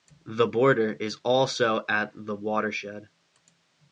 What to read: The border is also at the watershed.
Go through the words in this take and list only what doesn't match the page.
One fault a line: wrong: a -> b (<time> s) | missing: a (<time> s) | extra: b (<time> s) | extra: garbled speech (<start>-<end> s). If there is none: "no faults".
no faults